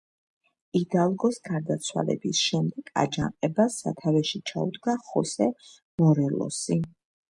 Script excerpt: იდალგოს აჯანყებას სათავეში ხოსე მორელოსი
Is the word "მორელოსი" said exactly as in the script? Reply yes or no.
yes